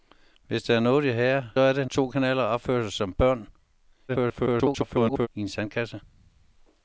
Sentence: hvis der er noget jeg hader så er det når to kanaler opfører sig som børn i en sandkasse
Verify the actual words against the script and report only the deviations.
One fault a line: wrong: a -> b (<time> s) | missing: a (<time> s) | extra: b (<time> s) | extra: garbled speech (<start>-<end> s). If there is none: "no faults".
missing: så (1.4 s)
missing: når (1.9 s)
extra: garbled speech (4.1-5.3 s)